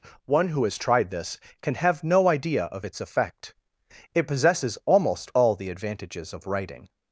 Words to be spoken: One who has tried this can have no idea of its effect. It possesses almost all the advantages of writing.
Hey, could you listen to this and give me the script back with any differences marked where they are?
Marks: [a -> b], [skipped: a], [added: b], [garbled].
One who has tried this can have no idea of its effect. It possesses almost all the advantages of writing.